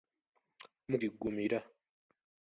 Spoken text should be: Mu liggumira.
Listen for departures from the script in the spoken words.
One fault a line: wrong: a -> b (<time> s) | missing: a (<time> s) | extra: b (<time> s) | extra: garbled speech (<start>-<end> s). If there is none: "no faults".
no faults